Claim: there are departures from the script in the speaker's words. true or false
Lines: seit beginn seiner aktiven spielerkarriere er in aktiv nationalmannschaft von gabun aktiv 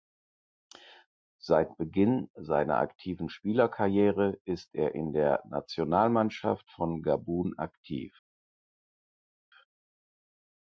true